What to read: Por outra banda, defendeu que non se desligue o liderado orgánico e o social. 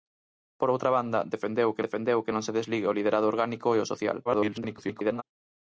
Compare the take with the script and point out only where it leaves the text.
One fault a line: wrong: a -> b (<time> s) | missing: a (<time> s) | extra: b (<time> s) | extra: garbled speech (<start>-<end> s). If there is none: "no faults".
extra: defendeu que (1.8 s)
extra: garbled speech (4.3-5.2 s)